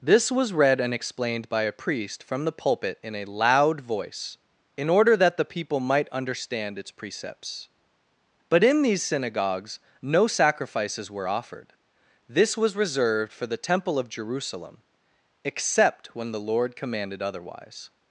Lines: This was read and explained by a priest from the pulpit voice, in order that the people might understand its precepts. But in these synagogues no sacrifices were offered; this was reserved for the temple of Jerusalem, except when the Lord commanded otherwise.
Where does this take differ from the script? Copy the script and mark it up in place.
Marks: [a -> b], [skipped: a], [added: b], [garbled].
This was read and explained by a priest from the pulpit [added: in a loud] voice, in order that the people might understand its precepts. But in these synagogues no sacrifices were offered; this was reserved for the temple of Jerusalem, except when the Lord commanded otherwise.